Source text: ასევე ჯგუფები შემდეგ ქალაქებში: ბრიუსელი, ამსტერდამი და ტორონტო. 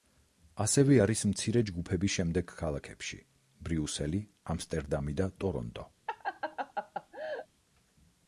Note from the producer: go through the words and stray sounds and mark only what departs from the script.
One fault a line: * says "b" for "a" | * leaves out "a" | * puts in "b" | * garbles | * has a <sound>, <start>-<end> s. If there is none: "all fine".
* puts in "არის მცირე"
* has a laugh, 6.1-7.5 s